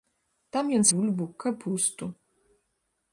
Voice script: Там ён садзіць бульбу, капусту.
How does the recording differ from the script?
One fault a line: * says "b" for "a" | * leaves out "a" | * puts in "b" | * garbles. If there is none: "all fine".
* leaves out "садзіць"